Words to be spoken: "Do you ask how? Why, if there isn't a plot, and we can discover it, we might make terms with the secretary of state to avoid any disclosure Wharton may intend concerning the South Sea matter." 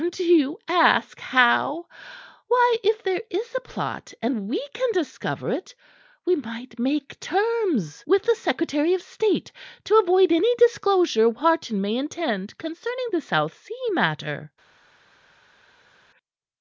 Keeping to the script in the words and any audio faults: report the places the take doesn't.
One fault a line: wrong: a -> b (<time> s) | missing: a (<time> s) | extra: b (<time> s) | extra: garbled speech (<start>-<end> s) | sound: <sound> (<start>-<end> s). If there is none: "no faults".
wrong: isn't -> is (3.3 s)